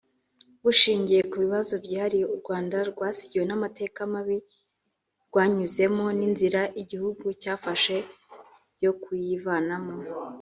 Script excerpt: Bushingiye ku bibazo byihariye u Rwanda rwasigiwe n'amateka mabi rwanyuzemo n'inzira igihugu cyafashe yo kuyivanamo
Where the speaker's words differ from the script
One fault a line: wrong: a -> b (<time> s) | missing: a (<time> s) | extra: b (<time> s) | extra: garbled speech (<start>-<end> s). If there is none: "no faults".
no faults